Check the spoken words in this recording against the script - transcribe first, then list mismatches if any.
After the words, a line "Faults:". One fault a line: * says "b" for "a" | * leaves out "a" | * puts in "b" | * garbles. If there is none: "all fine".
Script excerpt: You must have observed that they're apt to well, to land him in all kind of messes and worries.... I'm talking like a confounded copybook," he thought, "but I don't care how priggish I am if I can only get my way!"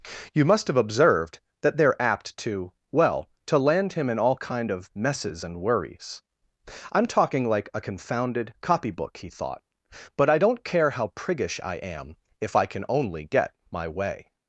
You must have observed that they're apt to well, to land him in all kind of messes and worries.... I'm talking like a confounded copybook," he thought, "but I don't care how priggish I am if I can only get my way!"
Faults:
all fine